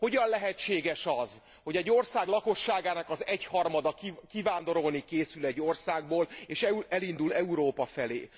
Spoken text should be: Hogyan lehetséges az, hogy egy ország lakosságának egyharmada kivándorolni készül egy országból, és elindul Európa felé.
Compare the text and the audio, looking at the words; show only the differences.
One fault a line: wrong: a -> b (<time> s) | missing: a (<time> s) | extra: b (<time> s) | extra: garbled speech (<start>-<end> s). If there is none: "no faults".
extra: az (3.1 s)